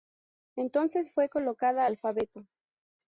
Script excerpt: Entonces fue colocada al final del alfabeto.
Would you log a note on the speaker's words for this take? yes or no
yes